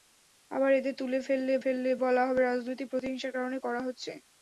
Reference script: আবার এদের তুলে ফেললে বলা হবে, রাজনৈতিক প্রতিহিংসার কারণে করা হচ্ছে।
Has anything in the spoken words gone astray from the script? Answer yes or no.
yes